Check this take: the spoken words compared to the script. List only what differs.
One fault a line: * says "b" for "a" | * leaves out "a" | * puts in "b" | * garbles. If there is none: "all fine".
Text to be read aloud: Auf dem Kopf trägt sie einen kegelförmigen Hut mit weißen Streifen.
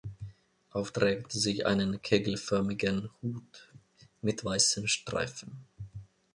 * leaves out "dem Kopf"